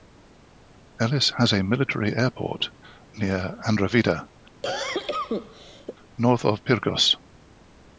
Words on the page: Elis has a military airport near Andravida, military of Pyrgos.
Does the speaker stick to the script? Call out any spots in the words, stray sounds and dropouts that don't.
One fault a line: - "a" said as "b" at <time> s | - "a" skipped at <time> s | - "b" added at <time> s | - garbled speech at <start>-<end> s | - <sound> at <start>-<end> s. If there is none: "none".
- cough at 4.6-6.0 s
- "military" said as "north" at 6.2 s